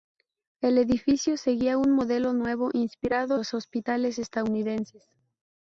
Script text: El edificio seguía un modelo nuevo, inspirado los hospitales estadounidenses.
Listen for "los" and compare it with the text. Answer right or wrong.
right